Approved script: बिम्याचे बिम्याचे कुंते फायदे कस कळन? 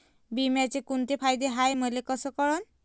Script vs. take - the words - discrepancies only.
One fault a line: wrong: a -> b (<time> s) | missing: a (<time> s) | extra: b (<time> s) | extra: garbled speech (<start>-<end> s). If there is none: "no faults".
missing: बिम्याचे (0.8 s)
extra: हाय मले (1.5 s)